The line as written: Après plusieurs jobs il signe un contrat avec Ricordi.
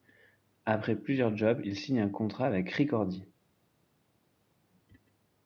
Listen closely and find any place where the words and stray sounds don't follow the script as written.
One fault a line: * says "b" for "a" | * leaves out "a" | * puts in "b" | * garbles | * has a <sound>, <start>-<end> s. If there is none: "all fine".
all fine